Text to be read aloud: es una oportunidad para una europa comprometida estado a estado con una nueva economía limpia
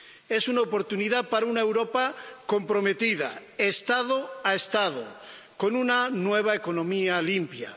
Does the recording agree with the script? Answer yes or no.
yes